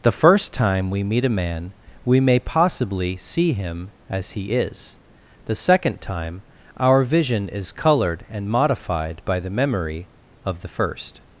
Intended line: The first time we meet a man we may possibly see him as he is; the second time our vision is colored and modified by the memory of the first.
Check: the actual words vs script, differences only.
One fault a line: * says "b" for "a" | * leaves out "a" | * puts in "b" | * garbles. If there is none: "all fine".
all fine